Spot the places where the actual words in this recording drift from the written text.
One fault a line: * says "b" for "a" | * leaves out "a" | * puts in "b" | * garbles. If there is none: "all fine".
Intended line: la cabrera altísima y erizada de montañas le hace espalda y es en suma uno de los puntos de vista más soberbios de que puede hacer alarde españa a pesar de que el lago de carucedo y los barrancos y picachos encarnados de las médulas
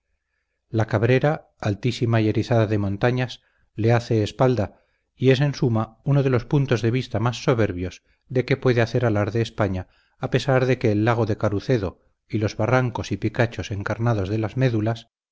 all fine